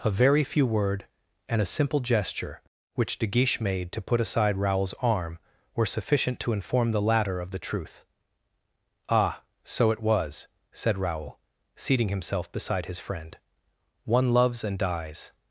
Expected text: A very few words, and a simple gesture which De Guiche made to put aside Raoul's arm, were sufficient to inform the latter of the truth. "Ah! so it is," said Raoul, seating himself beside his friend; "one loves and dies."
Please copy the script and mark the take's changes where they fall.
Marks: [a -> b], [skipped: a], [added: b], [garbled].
A very few [words, -> word] and a simple gesture which De Guiche made to put aside Raoul's arm, were sufficient to inform the latter of the truth. "Ah! so it [is," -> was] said Raoul, seating himself beside his friend; "one loves and dies."